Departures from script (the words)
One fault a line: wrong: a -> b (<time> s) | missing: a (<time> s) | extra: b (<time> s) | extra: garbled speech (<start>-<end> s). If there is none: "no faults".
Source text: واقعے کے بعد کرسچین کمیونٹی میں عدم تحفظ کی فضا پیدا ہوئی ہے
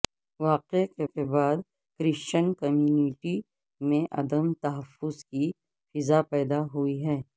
extra: کے (1.0 s)